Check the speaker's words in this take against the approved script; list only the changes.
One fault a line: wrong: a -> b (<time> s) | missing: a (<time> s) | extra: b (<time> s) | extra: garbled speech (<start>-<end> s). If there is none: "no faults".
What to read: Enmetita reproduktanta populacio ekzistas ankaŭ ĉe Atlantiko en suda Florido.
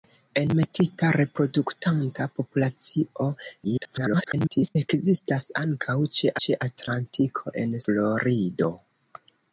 extra: garbled speech (3.6-4.8 s)
extra: ĉe (6.5 s)
missing: suda (7.8 s)